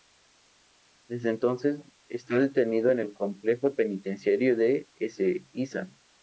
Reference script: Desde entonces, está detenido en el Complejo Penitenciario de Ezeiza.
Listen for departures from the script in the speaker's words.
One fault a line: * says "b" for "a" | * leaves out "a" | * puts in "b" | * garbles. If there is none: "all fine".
all fine